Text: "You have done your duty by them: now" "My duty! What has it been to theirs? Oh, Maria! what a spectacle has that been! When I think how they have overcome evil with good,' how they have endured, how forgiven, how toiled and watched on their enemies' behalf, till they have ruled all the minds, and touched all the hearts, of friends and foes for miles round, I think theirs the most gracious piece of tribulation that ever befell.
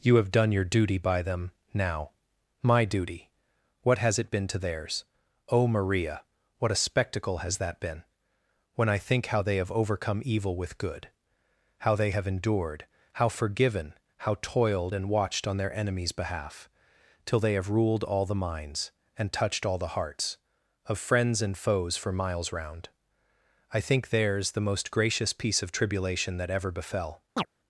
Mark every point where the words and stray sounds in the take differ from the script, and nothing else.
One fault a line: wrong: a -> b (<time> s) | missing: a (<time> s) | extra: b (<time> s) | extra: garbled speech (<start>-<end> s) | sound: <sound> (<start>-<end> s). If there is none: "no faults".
sound: chirp (27.4-27.5 s)